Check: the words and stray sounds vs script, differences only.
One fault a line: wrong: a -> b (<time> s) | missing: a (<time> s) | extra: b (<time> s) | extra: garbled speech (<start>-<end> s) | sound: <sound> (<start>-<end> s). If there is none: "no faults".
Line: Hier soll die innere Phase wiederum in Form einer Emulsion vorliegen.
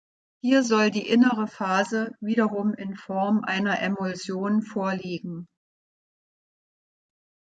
no faults